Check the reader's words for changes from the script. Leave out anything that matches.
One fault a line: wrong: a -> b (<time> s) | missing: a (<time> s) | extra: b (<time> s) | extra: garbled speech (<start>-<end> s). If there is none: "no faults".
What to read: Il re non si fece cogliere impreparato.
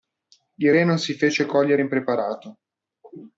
no faults